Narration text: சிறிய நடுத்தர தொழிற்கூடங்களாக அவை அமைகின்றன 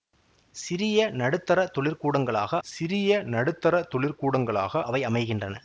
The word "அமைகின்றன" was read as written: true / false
true